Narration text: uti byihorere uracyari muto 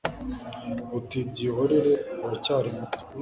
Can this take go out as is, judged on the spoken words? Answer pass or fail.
pass